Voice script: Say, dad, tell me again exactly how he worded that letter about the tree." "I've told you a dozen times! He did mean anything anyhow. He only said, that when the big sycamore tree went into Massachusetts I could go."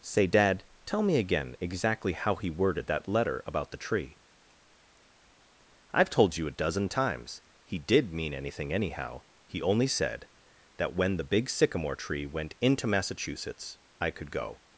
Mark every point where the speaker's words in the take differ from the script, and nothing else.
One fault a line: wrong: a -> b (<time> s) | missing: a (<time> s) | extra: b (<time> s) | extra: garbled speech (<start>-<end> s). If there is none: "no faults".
no faults